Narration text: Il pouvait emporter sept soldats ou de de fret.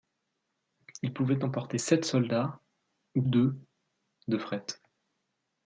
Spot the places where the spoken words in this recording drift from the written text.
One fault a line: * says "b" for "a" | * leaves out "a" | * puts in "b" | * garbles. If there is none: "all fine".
all fine